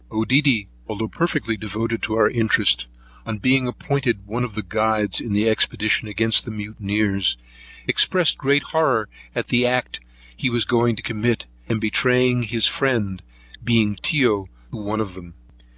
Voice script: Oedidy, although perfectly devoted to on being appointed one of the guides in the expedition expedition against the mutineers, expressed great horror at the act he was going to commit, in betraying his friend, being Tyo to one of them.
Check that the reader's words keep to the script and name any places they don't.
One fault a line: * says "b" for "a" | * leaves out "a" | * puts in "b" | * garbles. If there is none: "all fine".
* puts in "our interest"
* leaves out "expedition"